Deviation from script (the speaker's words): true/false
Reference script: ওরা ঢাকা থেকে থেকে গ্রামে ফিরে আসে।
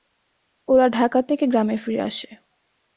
true